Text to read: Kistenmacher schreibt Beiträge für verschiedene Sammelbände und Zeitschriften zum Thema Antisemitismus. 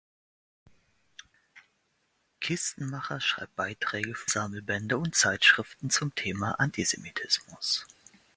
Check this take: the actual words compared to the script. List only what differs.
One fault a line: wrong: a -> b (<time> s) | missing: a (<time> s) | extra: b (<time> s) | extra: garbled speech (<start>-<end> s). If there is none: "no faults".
missing: verschiedene (4.3 s)